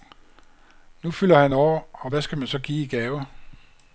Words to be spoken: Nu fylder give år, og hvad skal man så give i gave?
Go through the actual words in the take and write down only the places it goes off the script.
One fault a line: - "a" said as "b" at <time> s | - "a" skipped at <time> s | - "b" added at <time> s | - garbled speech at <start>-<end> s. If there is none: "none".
- "give" said as "han" at 1.4 s